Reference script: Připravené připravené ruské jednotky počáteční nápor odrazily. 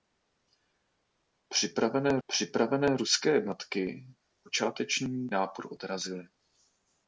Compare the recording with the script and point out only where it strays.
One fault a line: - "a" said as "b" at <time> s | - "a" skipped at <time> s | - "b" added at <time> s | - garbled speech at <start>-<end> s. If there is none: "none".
none